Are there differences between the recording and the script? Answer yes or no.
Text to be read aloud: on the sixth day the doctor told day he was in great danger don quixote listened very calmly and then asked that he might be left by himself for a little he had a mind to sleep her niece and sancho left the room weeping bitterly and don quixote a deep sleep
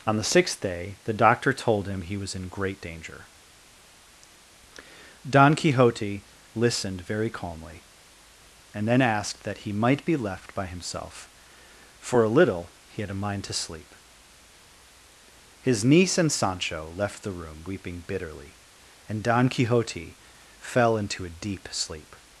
yes